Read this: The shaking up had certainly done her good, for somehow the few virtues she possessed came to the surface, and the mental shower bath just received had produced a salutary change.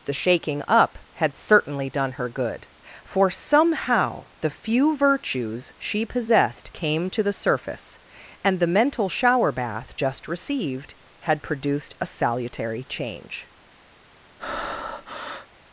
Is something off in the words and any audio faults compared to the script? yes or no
yes